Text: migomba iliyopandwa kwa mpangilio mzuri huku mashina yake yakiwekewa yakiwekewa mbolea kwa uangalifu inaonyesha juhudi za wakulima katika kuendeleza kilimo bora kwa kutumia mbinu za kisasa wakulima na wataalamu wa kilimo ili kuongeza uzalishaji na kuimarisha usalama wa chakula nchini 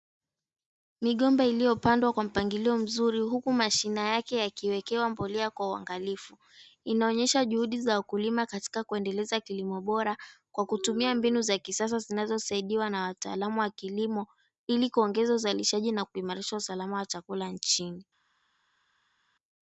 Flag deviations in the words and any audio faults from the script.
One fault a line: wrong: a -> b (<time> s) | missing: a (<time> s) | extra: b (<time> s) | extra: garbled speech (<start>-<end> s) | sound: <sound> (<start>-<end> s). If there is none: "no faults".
missing: yakiwekewa (5.1 s)
wrong: wakulima -> zinazosaidiwa (12.0 s)